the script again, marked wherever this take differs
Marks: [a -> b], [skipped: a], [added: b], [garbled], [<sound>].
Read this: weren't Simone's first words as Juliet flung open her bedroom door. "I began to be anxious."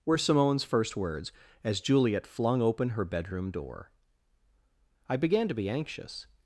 [weren't -> were] Simone's first words as Juliet flung open her bedroom door. "I began to be anxious."